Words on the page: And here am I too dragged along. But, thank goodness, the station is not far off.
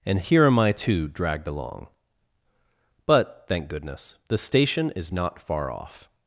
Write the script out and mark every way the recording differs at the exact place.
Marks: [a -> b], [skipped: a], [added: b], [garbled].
And here am I too dragged along. But, thank goodness, the station is not far off.